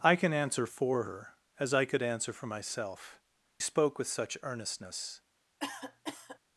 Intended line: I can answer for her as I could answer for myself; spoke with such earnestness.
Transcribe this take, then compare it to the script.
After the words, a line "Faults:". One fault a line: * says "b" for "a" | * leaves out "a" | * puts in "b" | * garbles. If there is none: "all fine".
I can answer for her as I could answer for myself; spoke with such earnestness.
Faults:
all fine